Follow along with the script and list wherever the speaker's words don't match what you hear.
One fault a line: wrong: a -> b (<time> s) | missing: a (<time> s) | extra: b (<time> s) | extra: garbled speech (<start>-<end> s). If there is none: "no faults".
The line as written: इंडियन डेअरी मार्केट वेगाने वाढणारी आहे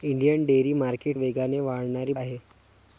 no faults